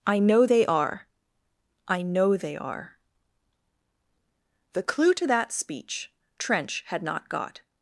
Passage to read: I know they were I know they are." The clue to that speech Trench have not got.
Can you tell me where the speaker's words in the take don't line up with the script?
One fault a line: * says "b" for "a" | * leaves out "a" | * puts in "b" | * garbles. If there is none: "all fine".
* says "are" for "were"
* says "had" for "have"